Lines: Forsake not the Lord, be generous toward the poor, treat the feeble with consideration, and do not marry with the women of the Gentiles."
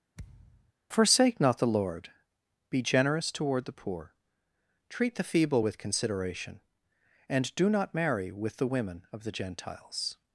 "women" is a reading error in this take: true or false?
false